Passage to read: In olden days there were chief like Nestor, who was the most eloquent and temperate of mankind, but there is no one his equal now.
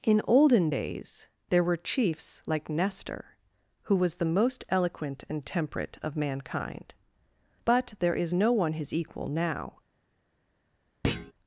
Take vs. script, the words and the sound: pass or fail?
fail